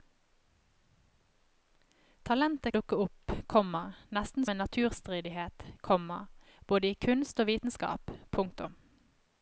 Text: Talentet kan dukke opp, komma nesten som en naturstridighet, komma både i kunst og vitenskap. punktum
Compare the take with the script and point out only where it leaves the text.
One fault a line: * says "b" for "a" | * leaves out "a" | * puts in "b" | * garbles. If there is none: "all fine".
* leaves out "kan"
* leaves out "som"